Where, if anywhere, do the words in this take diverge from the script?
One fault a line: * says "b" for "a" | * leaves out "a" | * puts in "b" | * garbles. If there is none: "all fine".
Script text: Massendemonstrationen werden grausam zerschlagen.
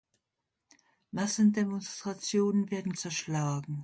* leaves out "grausam"